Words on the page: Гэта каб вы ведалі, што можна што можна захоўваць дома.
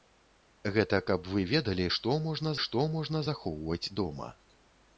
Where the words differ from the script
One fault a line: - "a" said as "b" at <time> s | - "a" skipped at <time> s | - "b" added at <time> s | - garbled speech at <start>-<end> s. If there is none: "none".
none